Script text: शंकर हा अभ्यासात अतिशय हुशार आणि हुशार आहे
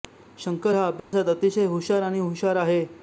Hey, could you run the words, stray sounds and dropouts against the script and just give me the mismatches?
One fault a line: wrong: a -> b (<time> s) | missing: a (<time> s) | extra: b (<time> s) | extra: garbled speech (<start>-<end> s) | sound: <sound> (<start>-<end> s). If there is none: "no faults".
sound: dropout (1.0-1.1 s)